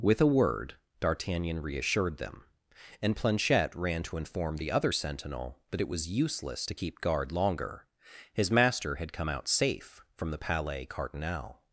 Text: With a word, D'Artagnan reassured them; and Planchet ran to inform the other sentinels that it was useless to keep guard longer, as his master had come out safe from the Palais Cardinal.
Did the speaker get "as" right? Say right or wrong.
wrong